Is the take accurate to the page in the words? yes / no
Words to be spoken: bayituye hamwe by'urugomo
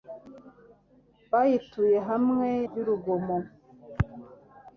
yes